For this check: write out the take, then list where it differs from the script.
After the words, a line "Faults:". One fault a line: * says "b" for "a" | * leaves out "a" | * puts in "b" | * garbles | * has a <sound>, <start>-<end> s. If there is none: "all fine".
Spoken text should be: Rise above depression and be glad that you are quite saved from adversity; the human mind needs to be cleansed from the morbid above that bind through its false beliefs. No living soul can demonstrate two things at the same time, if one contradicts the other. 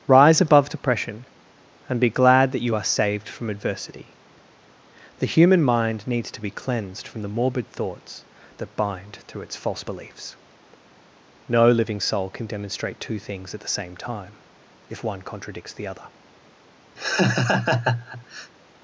Rise above depression and be glad that you are saved from adversity; the human mind needs to be cleansed from the morbid thoughts that bind through its false beliefs. No living soul can demonstrate two things at the same time, if one contradicts the other.
Faults:
* leaves out "quite"
* says "thoughts" for "above"
* has a laugh, 17.0-18.5 s